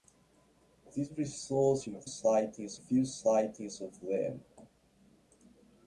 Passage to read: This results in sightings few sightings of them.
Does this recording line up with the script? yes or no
yes